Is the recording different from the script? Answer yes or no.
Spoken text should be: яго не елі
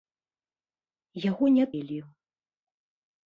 no